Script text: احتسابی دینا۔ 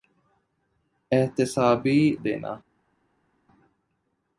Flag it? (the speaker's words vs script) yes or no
no